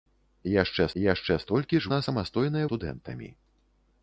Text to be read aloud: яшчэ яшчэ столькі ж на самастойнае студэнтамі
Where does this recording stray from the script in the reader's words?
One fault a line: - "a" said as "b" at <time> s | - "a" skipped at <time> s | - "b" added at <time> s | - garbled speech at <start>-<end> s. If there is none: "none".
none